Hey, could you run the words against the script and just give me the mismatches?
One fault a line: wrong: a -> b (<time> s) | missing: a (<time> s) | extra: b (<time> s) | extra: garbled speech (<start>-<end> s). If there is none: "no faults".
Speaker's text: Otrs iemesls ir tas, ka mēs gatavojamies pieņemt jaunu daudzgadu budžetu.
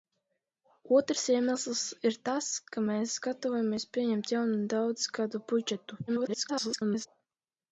extra: garbled speech (6.1-7.1 s)